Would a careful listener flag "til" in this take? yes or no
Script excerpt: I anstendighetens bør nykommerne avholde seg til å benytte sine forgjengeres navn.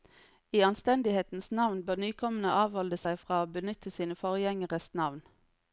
yes